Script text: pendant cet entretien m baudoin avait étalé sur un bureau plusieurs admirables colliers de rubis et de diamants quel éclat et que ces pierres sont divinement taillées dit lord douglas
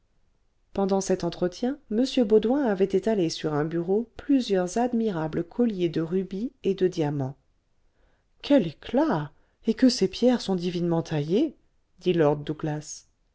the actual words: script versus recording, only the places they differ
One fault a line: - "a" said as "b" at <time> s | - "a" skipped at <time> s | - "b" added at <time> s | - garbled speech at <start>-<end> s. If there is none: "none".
none